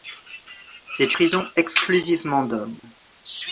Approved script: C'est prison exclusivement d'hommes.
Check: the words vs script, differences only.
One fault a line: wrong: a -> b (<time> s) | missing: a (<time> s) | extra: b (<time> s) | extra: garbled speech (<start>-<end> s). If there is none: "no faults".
no faults